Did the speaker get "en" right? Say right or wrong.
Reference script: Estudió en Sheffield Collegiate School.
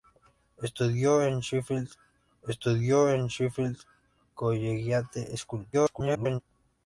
right